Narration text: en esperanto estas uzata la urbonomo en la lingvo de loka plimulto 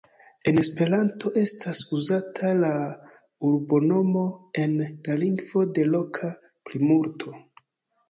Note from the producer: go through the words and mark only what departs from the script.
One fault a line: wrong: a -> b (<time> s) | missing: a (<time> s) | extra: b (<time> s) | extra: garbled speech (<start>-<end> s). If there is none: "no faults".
no faults